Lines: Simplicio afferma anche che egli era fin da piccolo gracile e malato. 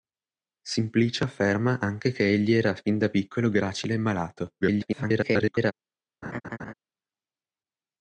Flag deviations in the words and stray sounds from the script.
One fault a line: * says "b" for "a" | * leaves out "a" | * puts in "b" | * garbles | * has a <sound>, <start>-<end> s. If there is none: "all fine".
* garbles
* has a laugh, 6.2-6.7 s